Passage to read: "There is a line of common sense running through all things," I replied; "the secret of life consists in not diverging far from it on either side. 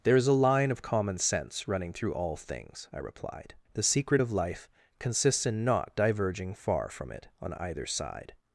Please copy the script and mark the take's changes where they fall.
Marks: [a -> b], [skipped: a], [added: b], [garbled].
"There is a line of common sense running through all things," I replied; "the secret of life consists in not diverging far from it on either side.